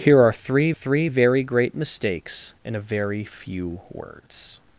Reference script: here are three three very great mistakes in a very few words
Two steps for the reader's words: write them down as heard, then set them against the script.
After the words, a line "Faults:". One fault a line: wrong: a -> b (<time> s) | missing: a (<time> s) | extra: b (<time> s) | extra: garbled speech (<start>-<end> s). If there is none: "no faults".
here are three three very great mistakes in a very few words
Faults:
no faults